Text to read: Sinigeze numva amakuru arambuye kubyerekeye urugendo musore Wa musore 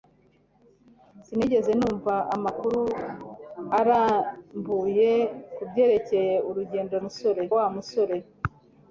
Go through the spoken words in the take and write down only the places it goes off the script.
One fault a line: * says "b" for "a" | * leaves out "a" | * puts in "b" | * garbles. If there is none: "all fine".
all fine